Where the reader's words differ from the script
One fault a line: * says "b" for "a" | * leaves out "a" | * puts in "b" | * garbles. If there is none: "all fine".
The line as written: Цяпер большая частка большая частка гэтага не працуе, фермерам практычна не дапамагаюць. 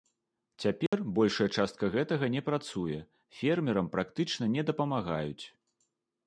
* leaves out "большая частка"